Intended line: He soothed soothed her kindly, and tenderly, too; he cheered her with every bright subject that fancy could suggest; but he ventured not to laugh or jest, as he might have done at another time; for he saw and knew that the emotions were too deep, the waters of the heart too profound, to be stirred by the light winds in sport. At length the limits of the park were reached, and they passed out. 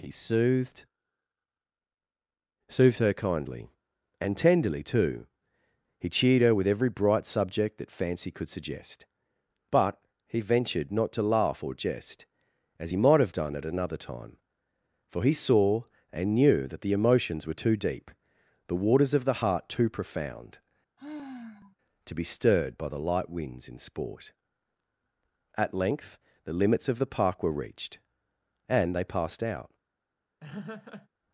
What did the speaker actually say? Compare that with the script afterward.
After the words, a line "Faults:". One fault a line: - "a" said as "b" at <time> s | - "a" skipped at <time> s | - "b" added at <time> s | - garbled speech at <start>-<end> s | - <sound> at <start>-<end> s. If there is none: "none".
He soothed soothed her kindly, and tenderly, too; he cheered her with every bright subject that fancy could suggest; but he ventured not to laugh or jest, as he might have done at another time; for he saw and knew that the emotions were too deep, the waters of the heart too profound, to be stirred by the light winds in sport. At length the limits of the park were reached, and they passed out.
Faults:
- sigh at 21.0-21.8 s
- laugh at 30.4-31.1 s